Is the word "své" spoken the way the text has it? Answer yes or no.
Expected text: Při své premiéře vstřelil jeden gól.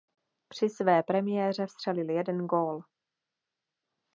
yes